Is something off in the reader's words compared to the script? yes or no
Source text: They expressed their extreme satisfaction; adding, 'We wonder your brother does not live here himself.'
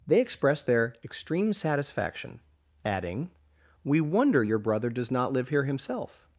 no